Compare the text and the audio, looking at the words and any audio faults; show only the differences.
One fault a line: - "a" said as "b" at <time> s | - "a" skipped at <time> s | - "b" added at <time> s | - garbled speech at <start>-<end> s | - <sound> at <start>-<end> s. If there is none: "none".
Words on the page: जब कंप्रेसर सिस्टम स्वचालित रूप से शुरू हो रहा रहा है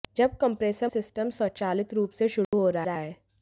- dropout at 2.4-2.5 s